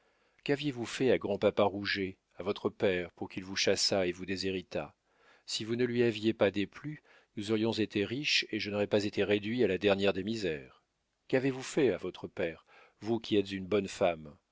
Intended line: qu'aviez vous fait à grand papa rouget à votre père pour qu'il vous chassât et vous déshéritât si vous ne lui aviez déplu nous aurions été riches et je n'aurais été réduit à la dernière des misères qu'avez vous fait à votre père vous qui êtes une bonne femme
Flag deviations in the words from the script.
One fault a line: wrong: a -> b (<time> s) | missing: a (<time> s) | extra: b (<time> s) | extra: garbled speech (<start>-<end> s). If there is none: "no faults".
extra: pas (6.3 s)
extra: pas (8.9 s)